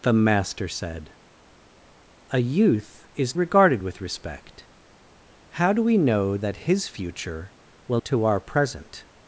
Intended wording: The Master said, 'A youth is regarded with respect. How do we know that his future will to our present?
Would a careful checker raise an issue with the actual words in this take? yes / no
no